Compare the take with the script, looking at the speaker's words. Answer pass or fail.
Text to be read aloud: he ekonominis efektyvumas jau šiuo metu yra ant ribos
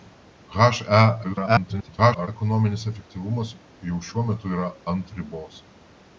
fail